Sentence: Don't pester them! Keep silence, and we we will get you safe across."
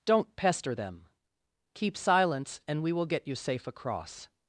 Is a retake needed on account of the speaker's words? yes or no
yes